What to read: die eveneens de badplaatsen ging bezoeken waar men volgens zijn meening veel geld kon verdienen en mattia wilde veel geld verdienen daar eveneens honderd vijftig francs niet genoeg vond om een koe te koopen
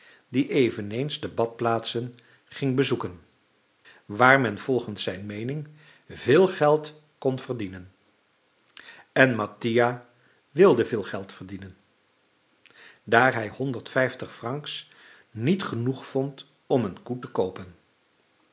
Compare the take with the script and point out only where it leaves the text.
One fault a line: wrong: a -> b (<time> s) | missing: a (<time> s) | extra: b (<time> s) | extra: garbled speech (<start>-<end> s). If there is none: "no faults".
wrong: eveneens -> hij (13.3 s)